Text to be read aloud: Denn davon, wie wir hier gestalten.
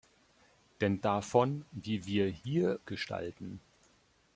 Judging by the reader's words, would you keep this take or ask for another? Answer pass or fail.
pass